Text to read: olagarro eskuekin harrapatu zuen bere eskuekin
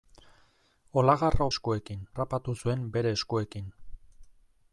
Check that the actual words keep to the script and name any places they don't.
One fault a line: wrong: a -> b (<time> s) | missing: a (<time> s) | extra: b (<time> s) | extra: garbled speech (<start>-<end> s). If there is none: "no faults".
no faults